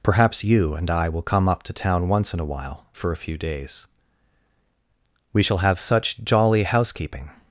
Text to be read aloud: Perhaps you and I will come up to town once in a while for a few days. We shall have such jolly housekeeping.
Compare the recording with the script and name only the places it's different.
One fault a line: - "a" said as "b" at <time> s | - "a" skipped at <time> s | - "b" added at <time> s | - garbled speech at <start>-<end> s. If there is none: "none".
none